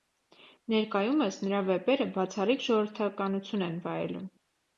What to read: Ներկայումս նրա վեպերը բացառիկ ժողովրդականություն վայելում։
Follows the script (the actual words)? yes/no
no